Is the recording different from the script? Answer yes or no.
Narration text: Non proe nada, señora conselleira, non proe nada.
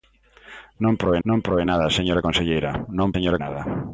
yes